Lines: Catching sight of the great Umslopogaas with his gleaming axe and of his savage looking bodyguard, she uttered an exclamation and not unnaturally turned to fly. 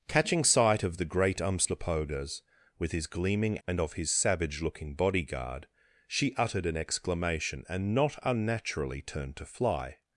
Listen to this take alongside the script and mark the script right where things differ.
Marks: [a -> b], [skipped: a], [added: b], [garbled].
Catching sight of the great Umslopogaas with his gleaming [skipped: axe] and of his savage looking bodyguard, she uttered an exclamation and not unnaturally turned to fly.